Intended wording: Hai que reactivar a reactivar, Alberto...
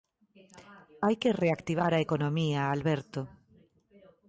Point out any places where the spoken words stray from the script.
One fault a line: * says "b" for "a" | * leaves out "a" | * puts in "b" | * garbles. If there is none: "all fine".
* says "economía" for "reactivar"